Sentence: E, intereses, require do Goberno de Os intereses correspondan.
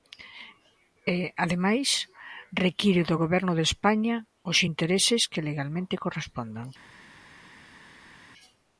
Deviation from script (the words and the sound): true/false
true